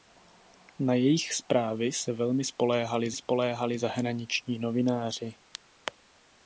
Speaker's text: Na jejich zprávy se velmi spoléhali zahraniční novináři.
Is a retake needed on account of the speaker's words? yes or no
yes